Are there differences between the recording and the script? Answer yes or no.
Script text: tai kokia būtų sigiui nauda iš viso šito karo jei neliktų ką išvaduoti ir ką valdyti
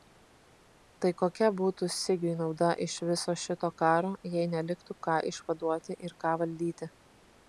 no